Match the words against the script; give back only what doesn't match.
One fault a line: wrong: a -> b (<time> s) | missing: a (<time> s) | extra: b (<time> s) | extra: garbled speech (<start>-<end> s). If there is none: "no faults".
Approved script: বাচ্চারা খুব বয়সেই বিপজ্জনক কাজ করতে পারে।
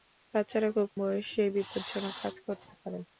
no faults